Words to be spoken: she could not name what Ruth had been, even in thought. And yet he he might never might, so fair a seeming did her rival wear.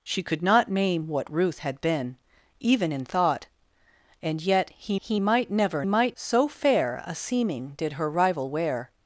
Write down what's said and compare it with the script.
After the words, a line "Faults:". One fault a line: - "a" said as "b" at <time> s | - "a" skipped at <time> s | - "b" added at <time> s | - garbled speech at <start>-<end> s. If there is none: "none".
she could not name what Ruth had been, even in thought. And yet he he might never might, so fair a seeming did her rival wear.
Faults:
none